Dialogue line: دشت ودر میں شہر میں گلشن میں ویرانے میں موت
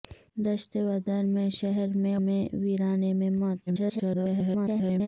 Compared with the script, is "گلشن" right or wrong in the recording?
wrong